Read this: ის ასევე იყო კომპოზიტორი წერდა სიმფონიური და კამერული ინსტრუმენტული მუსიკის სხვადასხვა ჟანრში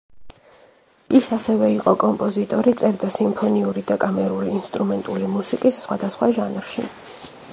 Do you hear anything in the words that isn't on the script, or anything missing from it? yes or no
no